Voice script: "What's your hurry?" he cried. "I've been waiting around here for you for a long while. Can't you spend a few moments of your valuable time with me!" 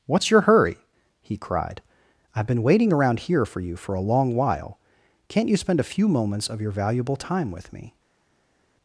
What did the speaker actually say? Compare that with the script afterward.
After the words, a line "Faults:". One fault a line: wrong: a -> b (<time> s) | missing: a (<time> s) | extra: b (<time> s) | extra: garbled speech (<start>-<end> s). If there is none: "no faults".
"What's your hurry?" he cried. "I've been waiting around here for you for a long while. Can't you spend a few moments of your valuable time with me!"
Faults:
no faults